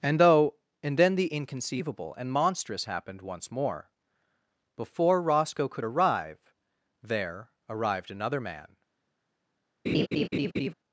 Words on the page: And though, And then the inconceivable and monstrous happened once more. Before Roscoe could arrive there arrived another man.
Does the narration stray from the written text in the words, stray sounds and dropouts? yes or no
yes